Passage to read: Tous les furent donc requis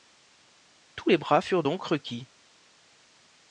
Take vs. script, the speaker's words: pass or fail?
fail